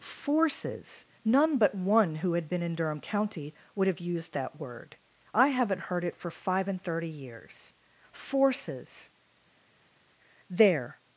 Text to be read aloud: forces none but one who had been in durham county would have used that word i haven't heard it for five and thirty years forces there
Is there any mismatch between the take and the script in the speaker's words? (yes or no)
no